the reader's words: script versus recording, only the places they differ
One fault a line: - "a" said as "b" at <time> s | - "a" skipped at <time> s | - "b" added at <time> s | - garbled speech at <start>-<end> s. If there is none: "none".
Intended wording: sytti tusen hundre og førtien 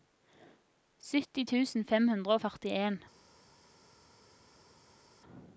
- "fem" added at 1.9 s